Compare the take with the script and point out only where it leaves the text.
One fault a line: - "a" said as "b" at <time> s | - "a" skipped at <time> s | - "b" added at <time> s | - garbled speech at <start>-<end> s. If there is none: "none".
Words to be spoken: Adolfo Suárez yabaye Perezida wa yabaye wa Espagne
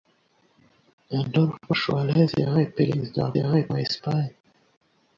none